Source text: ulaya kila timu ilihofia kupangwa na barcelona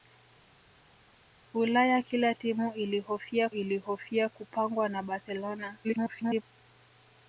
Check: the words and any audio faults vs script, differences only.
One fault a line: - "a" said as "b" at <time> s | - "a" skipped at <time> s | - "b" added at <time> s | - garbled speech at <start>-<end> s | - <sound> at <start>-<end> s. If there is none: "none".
- "ilihofia" added at 3.5 s
- garbled speech at 5.8-6.4 s